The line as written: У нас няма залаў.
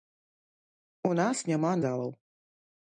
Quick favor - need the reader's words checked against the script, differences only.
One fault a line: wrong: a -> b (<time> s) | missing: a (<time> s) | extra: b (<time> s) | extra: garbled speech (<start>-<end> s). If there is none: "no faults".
no faults